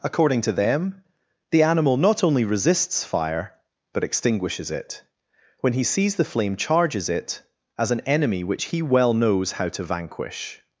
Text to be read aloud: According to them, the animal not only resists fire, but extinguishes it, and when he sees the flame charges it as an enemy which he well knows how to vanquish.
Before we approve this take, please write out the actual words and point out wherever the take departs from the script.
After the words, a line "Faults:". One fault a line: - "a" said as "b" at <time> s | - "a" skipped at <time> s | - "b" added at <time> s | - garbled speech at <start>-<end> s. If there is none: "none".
According to them, the animal not only resists fire, but extinguishes it, when he sees the flame charges it as an enemy which he well knows how to vanquish.
Faults:
- "and" skipped at 5.0 s